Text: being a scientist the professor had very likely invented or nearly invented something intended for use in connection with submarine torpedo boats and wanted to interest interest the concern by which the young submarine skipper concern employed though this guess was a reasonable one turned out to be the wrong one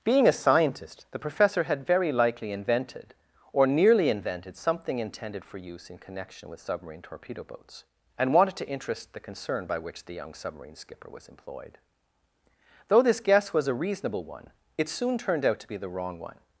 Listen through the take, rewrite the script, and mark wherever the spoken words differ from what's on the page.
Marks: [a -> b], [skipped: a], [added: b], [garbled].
being a scientist the professor had very likely invented or nearly invented something intended for use in connection with submarine torpedo boats and wanted to interest [skipped: interest] the concern by which the young submarine skipper [concern -> was] employed though this guess was a reasonable one [added: it soon] turned out to be the wrong one